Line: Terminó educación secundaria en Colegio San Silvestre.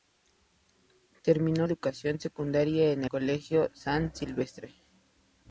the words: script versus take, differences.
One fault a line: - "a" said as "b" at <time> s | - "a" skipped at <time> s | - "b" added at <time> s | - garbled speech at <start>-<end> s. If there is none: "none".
none